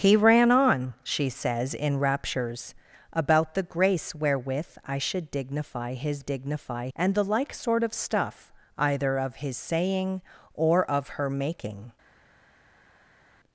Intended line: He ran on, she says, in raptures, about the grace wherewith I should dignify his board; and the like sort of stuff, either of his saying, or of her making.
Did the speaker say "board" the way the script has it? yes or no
no